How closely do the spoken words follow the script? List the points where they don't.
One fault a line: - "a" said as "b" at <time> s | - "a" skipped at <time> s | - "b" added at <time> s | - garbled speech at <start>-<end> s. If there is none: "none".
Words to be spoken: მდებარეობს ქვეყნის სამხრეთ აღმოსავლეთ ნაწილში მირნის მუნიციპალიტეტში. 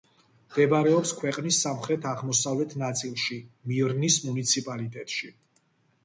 none